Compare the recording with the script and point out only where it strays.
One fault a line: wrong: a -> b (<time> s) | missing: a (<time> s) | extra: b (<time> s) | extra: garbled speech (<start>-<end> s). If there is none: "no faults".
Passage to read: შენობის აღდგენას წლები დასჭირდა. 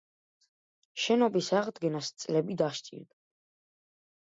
no faults